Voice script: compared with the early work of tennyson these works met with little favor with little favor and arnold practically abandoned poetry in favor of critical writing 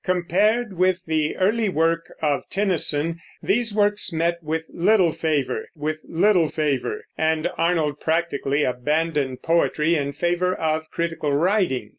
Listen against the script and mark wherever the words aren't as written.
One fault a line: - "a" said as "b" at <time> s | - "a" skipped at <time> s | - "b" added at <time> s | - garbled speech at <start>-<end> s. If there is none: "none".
none